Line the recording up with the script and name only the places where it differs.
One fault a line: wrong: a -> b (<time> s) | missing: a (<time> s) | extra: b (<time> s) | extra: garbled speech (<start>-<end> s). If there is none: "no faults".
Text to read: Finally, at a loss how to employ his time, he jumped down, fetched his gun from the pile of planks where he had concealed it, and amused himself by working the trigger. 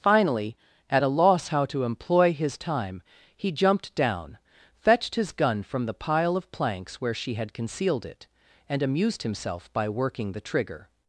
wrong: he -> she (7.1 s)